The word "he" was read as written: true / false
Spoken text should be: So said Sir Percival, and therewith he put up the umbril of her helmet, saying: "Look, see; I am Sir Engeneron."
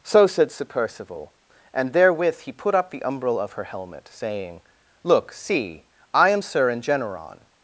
true